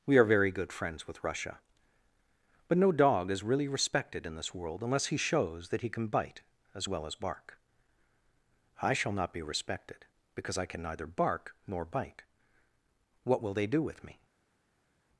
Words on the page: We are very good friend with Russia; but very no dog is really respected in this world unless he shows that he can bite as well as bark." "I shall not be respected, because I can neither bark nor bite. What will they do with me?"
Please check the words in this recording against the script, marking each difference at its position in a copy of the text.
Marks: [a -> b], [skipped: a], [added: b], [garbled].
We are very good [friend -> friends] with Russia; but [skipped: very] no dog is really respected in this world unless he shows that he can bite as well as bark." "I shall not be respected, because I can neither bark nor bite. What will they do with me?"